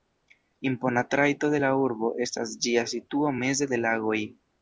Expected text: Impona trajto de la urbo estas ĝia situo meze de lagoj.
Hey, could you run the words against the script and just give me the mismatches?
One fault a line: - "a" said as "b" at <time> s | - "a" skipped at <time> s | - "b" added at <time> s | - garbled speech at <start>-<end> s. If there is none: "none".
none